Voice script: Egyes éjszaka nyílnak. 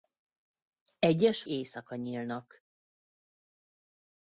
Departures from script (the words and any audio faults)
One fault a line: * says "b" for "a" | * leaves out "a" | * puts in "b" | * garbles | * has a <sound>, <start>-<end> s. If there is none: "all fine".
all fine